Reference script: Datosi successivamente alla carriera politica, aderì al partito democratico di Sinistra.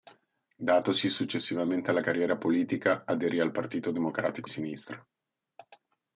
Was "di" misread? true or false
true